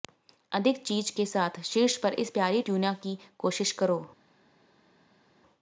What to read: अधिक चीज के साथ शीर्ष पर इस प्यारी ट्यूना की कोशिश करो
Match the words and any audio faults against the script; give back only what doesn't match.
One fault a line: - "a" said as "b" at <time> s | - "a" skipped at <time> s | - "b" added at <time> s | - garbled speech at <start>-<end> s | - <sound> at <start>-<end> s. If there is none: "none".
none